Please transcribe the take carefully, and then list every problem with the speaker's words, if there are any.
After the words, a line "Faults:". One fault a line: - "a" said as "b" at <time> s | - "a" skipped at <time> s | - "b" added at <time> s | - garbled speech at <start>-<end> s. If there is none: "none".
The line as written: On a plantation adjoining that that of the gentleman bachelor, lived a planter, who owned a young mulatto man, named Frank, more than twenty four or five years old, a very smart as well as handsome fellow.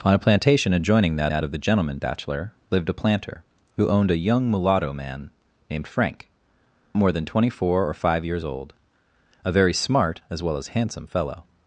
On a plantation adjoining that that of the gentleman bachelor, lived a planter, who owned a young mulatto man, named Frank, more than twenty four or five years old, a very smart as well as handsome fellow.
Faults:
none